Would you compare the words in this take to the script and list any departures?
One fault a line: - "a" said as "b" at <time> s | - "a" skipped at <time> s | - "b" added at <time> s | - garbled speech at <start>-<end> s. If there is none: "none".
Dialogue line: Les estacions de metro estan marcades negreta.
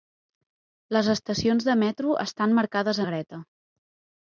none